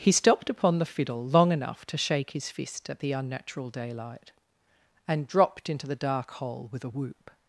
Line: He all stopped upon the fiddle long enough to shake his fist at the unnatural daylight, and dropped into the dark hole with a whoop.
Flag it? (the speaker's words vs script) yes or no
yes